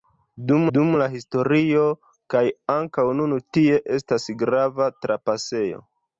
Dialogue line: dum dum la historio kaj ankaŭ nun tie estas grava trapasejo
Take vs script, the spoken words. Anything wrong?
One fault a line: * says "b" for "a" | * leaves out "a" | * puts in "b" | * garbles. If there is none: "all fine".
all fine